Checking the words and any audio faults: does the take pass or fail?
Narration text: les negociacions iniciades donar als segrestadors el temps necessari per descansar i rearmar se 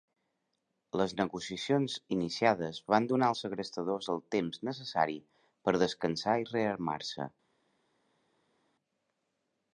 fail